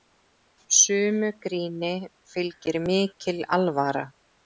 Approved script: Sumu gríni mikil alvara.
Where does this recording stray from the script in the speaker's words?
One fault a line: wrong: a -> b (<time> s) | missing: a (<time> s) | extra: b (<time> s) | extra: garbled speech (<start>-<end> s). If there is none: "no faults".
extra: fylgir (2.3 s)